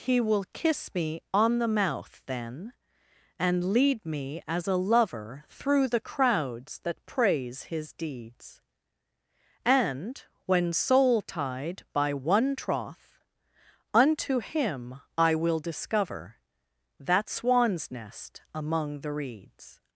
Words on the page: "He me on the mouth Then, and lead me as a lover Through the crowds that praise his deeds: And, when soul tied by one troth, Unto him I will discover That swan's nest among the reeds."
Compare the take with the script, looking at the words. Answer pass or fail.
fail